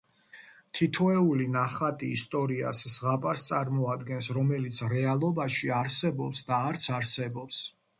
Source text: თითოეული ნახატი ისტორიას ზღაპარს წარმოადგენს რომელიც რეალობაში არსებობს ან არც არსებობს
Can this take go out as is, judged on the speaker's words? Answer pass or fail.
fail